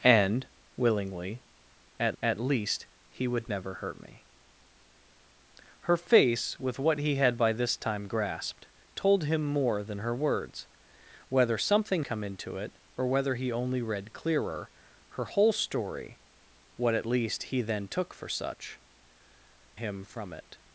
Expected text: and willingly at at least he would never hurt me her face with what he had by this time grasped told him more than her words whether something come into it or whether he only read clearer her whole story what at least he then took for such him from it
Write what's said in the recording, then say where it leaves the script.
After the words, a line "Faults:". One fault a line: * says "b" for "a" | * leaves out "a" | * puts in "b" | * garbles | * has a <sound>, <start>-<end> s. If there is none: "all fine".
and willingly at at least he would never hurt me her face with what he had by this time grasped told him more than her words whether something come into it or whether he only read clearer her whole story what at least he then took for such him from it
Faults:
all fine